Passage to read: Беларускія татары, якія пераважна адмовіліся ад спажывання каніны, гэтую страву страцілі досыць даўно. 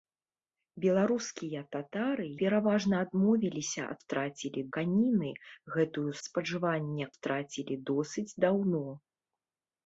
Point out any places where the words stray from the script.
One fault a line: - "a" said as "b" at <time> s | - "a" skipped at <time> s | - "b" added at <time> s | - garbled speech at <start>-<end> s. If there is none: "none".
- "якія" skipped at 2.2 s
- "спажывання" said as "страцілі" at 4.0 s
- "страву" said as "спажывання" at 6.3 s